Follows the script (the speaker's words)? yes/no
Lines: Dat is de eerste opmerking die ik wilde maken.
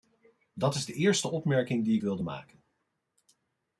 yes